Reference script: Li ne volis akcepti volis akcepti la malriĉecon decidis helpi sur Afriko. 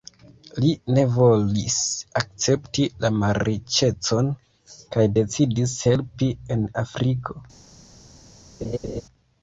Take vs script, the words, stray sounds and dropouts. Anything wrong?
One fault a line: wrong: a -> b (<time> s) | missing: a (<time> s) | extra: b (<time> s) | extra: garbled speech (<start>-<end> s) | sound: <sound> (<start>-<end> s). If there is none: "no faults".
missing: volis akcepti (2.9 s)
extra: kaj (5.0 s)
wrong: sur -> en (6.6 s)
sound: laugh (8.6-9.0 s)